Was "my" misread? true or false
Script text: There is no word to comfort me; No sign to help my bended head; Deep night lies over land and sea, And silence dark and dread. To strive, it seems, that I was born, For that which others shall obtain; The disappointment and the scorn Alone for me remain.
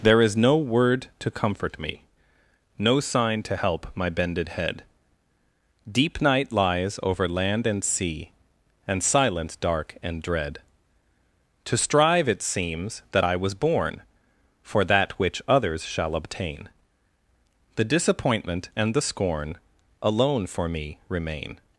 false